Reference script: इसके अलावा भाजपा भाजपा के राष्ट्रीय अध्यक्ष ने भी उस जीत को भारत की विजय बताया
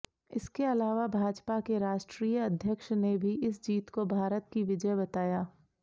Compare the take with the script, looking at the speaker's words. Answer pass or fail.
fail